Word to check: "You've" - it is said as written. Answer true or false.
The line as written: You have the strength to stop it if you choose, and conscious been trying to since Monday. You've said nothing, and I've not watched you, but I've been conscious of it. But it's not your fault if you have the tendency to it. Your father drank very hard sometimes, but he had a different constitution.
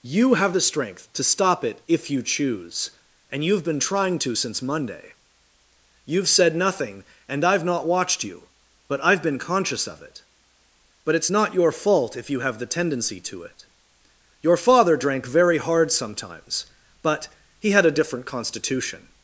true